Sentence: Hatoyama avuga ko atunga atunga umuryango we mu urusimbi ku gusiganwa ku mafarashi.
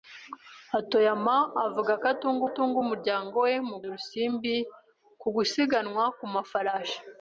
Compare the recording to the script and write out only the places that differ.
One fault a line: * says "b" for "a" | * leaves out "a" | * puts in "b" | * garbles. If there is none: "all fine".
all fine